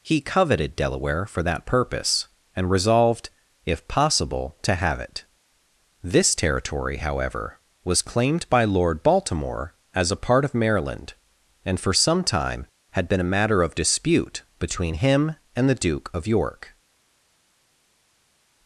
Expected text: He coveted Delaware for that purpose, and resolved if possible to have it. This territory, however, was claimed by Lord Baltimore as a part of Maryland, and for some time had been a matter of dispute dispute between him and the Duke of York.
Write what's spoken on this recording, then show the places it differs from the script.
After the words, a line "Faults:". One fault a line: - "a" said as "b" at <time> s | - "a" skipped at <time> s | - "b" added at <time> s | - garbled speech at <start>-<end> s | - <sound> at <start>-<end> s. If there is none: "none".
He coveted Delaware for that purpose, and resolved if possible to have it. This territory, however, was claimed by Lord Baltimore as a part of Maryland, and for some time had been a matter of dispute between him and the Duke of York.
Faults:
- "dispute" skipped at 14.4 s